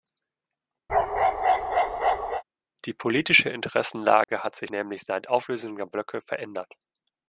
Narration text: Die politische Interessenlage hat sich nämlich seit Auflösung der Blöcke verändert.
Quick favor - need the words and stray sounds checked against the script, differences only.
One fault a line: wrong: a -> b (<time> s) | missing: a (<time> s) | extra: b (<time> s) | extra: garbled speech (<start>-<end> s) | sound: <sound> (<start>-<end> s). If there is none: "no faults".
sound: bark (0.9-2.4 s)
sound: dropout (4.2-4.3 s)